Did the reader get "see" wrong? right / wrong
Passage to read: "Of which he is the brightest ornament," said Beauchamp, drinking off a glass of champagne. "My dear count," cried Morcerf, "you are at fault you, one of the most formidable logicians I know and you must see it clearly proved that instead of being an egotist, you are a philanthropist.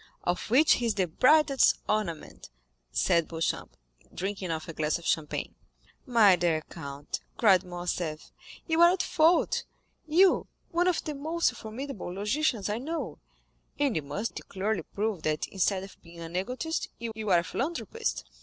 wrong